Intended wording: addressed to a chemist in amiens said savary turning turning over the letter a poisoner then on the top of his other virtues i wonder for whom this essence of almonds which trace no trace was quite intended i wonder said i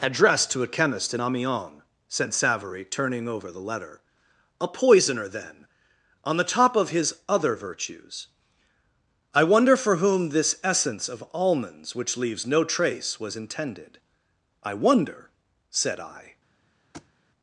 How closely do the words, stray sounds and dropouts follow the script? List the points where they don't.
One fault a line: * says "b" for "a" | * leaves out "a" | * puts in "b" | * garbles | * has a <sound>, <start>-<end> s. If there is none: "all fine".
* leaves out "turning"
* says "leaves" for "trace"
* leaves out "quite"
* has a thud, 16.9-17.1 s